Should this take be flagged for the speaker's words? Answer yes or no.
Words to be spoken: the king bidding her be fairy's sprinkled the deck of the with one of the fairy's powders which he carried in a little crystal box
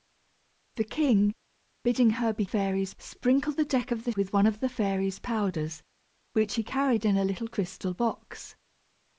no